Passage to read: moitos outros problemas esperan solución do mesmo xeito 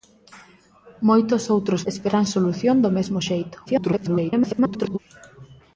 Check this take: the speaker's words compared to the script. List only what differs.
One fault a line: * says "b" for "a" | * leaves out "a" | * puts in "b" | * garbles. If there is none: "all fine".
* leaves out "problemas"
* garbles